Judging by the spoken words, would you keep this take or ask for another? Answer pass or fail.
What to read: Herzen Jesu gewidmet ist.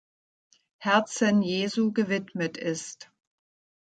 pass